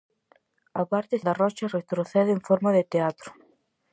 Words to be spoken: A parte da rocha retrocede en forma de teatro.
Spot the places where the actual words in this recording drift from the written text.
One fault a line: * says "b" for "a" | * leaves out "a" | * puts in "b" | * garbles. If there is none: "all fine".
all fine